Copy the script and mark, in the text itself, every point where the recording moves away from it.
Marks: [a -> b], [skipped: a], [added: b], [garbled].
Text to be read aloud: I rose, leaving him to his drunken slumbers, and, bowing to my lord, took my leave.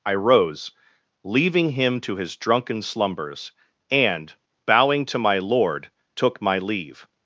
I rose, leaving him to his drunken slumbers, and, bowing to my lord, took my leave.